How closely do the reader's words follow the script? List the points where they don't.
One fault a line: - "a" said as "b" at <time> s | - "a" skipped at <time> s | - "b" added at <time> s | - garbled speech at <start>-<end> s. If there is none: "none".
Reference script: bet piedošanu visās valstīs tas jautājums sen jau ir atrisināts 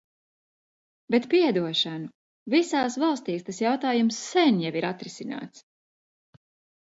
none